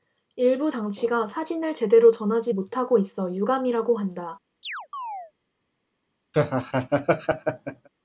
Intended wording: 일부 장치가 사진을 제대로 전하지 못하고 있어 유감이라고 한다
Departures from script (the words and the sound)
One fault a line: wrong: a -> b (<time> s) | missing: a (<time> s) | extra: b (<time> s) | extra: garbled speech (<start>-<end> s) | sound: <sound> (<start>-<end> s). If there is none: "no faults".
sound: chirp (4.6-5.3 s)
sound: laugh (6.3-7.9 s)